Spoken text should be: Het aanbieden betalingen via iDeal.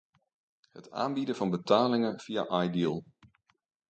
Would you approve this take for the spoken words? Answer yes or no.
no